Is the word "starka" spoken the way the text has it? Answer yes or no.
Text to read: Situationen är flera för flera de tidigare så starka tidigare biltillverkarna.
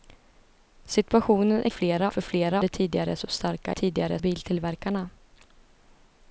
yes